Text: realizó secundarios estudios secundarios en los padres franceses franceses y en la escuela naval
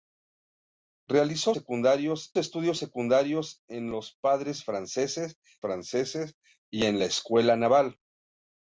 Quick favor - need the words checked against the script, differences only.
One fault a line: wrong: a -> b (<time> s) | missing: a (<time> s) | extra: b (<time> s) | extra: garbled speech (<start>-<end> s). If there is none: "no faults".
no faults